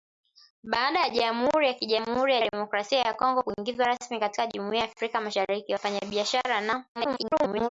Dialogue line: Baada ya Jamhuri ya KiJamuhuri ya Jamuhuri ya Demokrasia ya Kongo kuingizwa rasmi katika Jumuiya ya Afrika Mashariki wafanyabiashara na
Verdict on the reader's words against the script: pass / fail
fail